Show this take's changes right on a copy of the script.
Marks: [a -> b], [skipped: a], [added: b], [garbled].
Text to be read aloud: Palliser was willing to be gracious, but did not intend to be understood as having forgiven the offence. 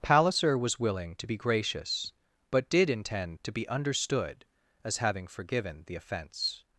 Palliser was willing to be gracious, but did [skipped: not] intend to be understood as having forgiven the offence.